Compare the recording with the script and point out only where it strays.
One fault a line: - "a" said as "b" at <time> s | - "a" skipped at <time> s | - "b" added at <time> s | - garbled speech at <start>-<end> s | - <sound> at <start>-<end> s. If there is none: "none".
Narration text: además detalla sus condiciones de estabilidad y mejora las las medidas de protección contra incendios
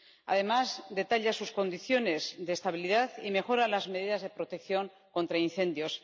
- "las" skipped at 3.9 s